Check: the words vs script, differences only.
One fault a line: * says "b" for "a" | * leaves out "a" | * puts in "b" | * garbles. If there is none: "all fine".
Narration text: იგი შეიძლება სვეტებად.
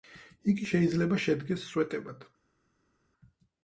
* puts in "შედგეს"